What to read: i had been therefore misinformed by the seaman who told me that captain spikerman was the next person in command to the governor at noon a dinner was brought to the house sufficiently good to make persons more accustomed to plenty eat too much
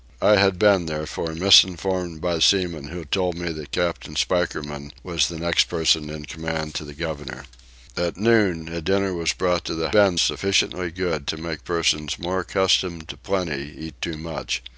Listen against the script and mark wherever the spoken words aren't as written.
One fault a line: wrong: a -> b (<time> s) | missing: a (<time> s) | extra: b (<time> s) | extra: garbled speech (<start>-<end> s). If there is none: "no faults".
missing: the (2.4 s)
wrong: house -> been (9.9 s)